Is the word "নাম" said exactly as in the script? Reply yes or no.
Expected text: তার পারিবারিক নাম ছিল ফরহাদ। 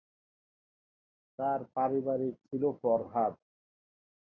no